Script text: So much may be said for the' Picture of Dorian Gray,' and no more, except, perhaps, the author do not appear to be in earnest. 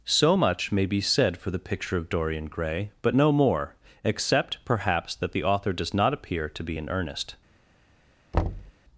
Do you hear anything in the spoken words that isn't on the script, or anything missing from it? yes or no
yes